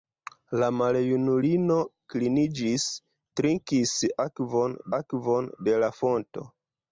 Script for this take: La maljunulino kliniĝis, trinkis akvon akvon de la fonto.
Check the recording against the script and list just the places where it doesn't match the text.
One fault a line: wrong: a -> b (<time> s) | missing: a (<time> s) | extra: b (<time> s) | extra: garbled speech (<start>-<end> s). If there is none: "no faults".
no faults